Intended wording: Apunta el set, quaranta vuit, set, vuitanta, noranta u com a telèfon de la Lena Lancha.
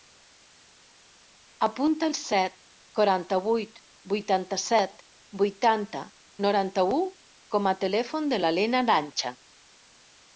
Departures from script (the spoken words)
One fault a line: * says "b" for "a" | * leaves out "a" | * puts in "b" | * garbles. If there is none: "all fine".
* puts in "vuitanta"